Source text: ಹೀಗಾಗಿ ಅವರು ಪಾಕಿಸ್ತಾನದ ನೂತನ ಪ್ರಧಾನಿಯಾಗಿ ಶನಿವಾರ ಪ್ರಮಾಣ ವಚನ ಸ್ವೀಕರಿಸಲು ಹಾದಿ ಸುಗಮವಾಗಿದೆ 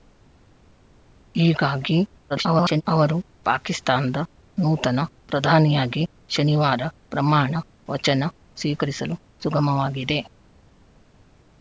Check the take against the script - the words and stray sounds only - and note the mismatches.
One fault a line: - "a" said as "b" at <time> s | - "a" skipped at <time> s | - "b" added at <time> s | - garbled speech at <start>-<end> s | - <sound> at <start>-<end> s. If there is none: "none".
- garbled speech at 2.3-2.8 s
- "ಹಾದಿ" skipped at 9.2 s